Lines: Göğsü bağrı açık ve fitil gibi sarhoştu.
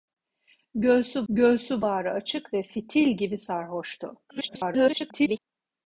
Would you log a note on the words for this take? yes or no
yes